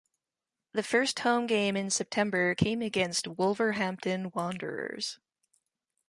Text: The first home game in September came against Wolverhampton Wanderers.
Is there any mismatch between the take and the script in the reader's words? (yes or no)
no